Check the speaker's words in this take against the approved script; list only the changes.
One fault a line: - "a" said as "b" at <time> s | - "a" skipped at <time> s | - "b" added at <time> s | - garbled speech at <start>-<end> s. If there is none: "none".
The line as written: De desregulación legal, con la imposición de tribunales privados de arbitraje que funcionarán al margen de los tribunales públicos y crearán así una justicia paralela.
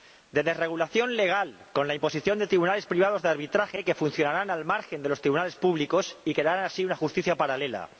none